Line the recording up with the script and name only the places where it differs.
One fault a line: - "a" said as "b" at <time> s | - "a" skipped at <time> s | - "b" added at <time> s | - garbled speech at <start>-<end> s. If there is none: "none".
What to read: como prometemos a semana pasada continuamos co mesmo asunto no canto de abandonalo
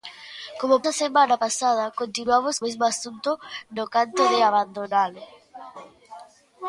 - "prometemos" skipped at 0.8 s
- "co" skipped at 2.6 s